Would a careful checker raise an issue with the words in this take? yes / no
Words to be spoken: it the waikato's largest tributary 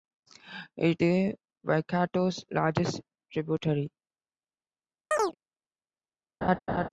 no